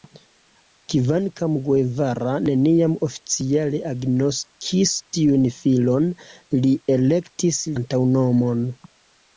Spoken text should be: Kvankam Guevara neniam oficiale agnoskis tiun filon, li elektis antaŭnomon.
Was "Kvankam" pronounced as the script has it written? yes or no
yes